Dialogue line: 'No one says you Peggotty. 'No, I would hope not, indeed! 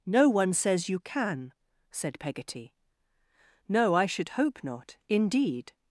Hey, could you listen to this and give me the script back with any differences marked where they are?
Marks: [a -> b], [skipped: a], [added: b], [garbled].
'No one says you [added: can said] Peggotty. 'No, I [would -> should] hope not, indeed!